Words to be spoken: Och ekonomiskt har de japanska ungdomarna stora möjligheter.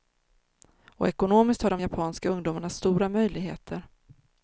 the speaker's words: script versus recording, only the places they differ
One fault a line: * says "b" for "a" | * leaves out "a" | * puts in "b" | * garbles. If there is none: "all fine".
all fine